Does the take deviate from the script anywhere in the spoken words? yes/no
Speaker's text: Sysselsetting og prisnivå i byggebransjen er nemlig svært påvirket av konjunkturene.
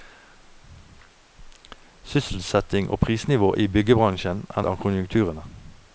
yes